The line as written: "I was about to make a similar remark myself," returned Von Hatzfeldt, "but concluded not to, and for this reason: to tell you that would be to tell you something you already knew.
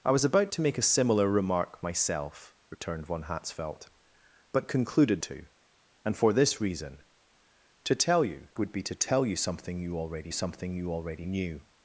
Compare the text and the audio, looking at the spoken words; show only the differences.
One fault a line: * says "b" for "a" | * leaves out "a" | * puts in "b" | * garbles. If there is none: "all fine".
* leaves out "not"
* leaves out "that"
* puts in "something you already"